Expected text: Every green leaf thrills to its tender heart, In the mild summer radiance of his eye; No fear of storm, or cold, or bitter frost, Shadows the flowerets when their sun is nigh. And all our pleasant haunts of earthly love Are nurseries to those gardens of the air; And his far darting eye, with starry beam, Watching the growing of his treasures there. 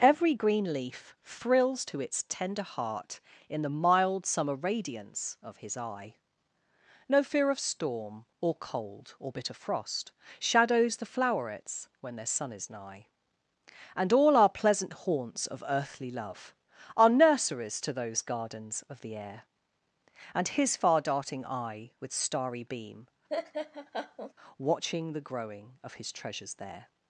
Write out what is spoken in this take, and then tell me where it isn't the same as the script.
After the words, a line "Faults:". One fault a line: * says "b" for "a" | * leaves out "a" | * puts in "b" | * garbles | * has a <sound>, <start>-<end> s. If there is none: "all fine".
Every green leaf thrills to its tender heart, In the mild summer radiance of his eye; No fear of storm, or cold, or bitter frost, Shadows the flowerets when their sun is nigh. And all our pleasant haunts of earthly love Are nurseries to those gardens of the air; And his far darting eye, with starry beam, Watching the growing of his treasures there.
Faults:
* has a laugh, 23.3-24.3 s